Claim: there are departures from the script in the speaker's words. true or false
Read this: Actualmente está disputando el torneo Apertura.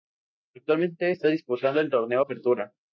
false